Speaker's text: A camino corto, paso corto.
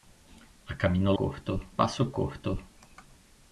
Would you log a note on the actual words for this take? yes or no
no